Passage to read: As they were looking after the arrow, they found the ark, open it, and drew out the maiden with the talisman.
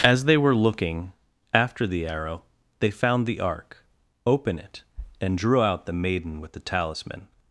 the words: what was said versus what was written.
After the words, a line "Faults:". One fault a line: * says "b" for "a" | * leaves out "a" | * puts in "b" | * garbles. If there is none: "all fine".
As they were looking after the arrow, they found the ark, open it, and drew out the maiden with the talisman.
Faults:
all fine